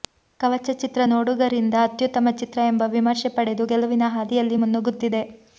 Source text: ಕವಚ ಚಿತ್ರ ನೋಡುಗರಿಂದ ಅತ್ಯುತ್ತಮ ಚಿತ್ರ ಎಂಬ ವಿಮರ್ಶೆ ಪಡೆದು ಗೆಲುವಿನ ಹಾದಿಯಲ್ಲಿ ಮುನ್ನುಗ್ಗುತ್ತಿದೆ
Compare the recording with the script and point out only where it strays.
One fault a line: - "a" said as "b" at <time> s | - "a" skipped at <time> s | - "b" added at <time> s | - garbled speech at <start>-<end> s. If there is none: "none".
none